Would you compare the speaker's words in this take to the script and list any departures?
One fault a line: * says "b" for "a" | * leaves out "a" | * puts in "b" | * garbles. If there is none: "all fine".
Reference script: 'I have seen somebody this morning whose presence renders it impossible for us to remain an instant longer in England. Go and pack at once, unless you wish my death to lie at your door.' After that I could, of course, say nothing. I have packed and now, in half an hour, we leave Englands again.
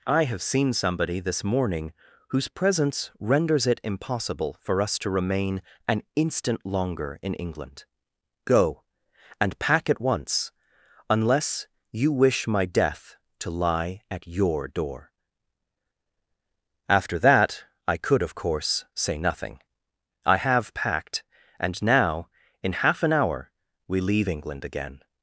* says "England" for "Englands"